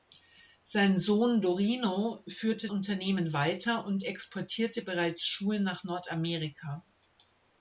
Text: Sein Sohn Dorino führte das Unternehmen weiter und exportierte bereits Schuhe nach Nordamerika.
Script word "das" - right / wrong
wrong